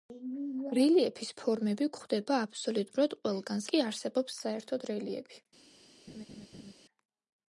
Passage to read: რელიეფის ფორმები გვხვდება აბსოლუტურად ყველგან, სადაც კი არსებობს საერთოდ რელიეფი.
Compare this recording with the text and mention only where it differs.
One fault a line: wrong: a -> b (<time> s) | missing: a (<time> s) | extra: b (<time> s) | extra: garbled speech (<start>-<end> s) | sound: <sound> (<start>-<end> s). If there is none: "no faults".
missing: სადაც (3.7 s)
sound: laugh (6.1-6.7 s)